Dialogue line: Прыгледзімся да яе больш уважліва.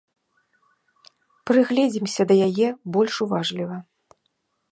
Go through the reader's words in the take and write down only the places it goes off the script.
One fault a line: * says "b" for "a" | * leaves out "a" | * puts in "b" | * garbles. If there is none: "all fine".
all fine